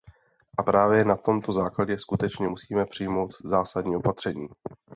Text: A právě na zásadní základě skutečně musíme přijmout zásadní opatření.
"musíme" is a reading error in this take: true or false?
false